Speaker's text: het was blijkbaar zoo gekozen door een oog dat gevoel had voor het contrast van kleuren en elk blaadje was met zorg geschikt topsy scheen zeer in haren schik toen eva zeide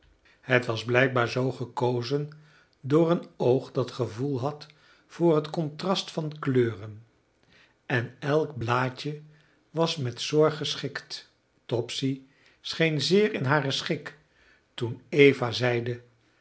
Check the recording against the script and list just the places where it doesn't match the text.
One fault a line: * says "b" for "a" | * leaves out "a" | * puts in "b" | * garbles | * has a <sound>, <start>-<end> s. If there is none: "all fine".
all fine